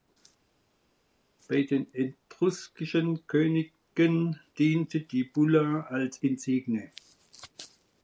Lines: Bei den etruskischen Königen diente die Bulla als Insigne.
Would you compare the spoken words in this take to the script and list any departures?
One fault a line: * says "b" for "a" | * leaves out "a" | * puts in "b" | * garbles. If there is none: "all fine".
all fine